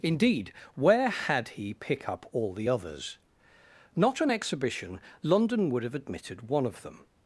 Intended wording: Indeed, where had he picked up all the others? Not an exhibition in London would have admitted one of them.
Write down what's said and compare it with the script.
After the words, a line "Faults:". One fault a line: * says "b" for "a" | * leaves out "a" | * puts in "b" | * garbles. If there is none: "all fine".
Indeed, where had he pick up all the others? Not an exhibition London would have admitted one of them.
Faults:
* says "pick" for "picked"
* leaves out "in"